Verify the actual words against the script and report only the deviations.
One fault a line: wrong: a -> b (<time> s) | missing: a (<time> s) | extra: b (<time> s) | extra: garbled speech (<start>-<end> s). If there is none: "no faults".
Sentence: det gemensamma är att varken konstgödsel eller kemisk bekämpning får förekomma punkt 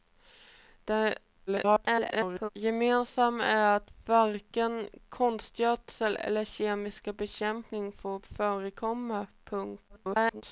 extra: garbled speech (1.5-2.5 s)
extra: garbled speech (9.9-10.4 s)